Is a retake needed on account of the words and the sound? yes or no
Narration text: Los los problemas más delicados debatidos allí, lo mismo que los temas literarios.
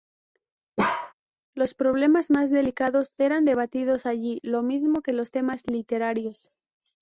yes